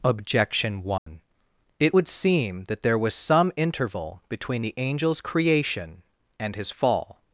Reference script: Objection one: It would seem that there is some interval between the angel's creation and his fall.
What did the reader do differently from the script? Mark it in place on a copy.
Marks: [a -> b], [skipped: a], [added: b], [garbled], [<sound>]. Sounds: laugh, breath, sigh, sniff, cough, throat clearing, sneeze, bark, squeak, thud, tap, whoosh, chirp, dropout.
Objection one: [dropout] It would seem that there [is -> was] some interval between the angel's creation and his fall.